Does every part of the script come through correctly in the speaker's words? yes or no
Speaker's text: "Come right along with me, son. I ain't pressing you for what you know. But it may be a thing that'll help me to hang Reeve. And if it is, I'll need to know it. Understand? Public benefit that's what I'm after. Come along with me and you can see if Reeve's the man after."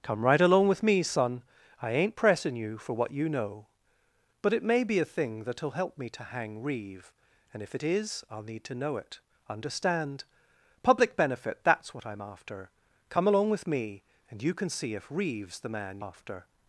yes